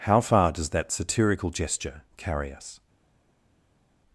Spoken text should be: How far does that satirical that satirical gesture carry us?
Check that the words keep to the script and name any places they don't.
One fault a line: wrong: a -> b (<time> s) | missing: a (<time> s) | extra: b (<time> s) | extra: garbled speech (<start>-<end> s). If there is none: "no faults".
missing: that satirical (1.5 s)